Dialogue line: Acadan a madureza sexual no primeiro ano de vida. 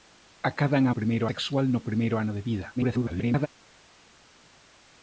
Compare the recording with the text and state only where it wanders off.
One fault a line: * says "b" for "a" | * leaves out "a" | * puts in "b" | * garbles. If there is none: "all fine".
* says "primeiro" for "madureza"
* garbles